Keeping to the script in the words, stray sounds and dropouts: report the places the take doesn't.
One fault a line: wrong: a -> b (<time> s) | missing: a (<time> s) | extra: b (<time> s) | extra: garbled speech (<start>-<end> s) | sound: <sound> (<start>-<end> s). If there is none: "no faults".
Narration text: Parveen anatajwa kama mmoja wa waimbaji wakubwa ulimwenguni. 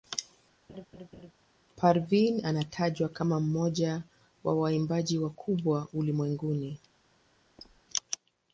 sound: laugh (0.7-1.3 s)
sound: squeak (7.6-7.8 s)